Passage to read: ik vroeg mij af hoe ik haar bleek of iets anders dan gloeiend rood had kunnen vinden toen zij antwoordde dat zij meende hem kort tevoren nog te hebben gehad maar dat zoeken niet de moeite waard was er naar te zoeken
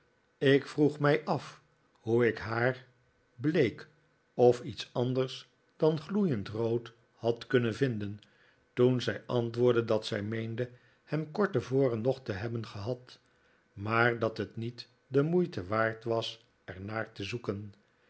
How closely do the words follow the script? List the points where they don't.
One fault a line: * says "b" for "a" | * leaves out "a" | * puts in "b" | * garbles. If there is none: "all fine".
* says "het" for "zoeken"